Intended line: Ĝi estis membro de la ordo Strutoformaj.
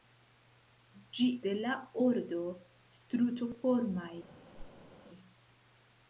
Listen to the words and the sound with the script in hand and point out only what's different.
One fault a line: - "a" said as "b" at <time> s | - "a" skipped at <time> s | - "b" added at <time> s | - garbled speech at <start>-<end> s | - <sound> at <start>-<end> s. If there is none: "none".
- "estis membro" skipped at 1.3 s
- whoosh at 4.5-4.9 s